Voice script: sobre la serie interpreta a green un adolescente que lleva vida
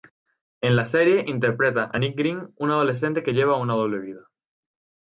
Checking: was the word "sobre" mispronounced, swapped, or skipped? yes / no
yes